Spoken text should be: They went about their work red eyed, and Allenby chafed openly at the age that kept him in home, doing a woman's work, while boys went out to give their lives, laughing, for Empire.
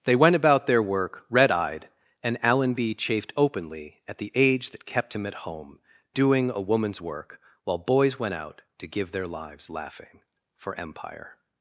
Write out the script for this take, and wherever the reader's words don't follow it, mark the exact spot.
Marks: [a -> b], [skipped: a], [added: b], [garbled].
They went about their work red eyed, and Allenby chafed openly at the age that kept him [in -> at] home, doing a woman's work, while boys went out to give their lives, laughing, for Empire.